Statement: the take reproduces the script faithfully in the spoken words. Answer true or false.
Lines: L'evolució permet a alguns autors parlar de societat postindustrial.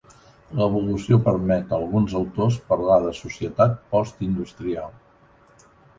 true